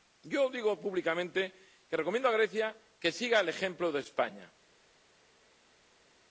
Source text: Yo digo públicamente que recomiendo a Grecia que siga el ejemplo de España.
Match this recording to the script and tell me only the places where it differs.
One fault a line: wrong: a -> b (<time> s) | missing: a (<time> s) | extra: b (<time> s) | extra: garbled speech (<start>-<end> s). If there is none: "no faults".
no faults